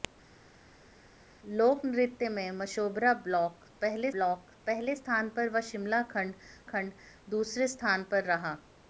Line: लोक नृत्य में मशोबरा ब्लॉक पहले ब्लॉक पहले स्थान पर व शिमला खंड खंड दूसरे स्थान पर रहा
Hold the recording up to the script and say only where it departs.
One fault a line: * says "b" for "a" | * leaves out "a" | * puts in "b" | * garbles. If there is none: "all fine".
all fine